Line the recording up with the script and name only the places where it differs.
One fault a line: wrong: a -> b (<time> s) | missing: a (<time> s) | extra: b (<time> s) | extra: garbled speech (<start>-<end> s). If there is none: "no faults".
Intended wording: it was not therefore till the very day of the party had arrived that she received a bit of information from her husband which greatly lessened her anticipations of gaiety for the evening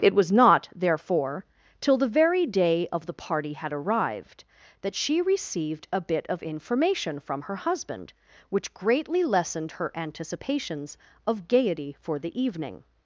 no faults